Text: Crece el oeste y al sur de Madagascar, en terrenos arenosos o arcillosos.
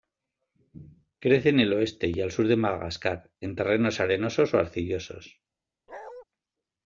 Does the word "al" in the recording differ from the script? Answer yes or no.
no